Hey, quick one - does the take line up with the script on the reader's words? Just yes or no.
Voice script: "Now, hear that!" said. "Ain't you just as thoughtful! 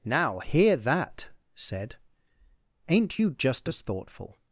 yes